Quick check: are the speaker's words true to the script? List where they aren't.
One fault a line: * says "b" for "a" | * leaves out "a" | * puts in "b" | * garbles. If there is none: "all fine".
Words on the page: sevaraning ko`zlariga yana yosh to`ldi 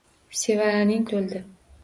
* leaves out "ko`zlariga yana yosh"